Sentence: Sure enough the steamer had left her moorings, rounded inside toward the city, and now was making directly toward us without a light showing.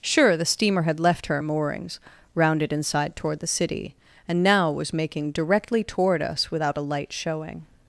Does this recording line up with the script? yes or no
no